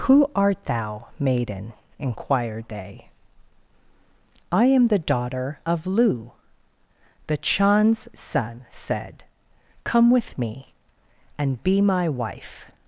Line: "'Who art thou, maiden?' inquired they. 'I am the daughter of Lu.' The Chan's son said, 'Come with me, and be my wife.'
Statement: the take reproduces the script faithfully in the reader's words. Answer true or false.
true